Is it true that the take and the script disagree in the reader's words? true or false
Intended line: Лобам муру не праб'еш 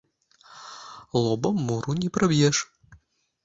false